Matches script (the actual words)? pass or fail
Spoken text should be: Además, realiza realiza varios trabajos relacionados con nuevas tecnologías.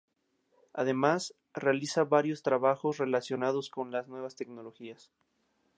fail